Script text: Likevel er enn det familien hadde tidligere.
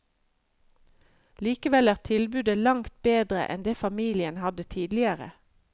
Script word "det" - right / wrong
right